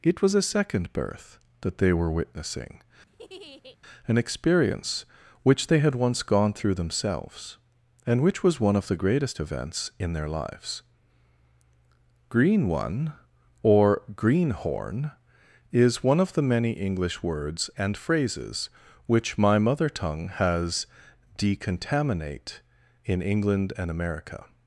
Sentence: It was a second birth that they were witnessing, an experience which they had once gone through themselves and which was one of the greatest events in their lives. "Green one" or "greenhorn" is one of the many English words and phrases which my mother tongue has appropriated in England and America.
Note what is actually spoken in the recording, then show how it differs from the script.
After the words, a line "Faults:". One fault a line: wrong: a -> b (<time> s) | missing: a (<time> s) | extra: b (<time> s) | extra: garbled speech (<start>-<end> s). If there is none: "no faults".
It was a second birth that they were witnessing, an experience which they had once gone through themselves and which was one of the greatest events in their lives. "Green one" or "greenhorn" is one of the many English words and phrases which my mother tongue has decontaminate in England and America.
Faults:
wrong: appropriated -> decontaminate (21.4 s)